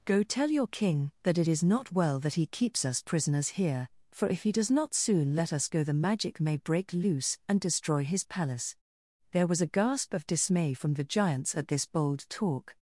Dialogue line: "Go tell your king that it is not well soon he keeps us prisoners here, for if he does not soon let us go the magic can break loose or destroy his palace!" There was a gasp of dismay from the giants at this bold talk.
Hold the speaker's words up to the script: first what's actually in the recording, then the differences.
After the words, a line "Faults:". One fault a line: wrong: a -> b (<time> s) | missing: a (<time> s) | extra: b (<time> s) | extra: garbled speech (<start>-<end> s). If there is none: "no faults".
"Go tell your king that it is not well that he keeps us prisoners here, for if he does not soon let us go the magic may break loose and destroy his palace!" There was a gasp of dismay from the giants at this bold talk.
Faults:
wrong: soon -> that (2.2 s)
wrong: can -> may (6.4 s)
wrong: or -> and (7.5 s)